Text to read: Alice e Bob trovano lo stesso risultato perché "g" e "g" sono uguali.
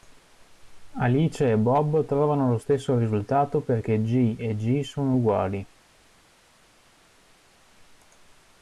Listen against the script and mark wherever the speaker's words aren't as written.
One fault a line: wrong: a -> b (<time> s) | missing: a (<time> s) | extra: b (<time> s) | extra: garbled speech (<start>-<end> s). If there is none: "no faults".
no faults